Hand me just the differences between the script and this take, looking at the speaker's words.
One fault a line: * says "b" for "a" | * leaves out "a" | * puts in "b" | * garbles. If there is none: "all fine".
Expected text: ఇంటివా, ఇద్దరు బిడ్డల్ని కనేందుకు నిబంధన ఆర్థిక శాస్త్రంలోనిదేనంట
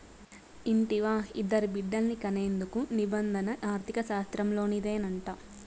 all fine